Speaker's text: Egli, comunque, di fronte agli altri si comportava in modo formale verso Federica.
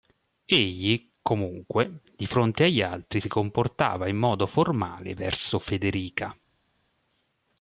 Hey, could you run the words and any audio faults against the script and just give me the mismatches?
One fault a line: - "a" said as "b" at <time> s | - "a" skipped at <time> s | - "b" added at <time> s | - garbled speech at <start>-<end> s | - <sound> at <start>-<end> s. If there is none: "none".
none